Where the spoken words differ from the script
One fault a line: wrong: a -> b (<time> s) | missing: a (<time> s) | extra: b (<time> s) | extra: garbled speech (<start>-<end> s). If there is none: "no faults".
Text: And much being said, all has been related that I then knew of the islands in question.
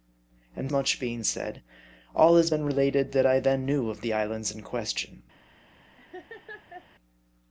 no faults